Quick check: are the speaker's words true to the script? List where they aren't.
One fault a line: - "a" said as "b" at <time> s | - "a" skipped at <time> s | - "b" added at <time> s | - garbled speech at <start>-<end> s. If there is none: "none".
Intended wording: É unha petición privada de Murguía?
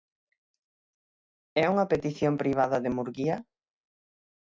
none